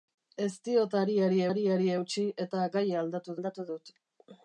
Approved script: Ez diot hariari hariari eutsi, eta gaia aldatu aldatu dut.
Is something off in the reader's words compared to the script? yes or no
no